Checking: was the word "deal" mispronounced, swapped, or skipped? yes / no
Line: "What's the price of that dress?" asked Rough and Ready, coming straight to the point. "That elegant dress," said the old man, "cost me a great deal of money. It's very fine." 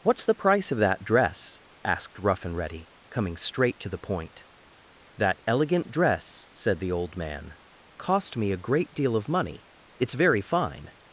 no